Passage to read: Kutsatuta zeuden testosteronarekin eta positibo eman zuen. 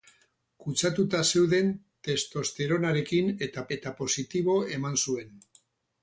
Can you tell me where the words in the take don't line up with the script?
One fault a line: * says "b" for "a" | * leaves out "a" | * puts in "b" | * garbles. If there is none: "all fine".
* puts in "eta"